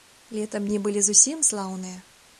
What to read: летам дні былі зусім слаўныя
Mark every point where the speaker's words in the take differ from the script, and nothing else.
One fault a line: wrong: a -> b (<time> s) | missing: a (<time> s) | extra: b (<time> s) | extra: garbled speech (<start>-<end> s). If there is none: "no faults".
no faults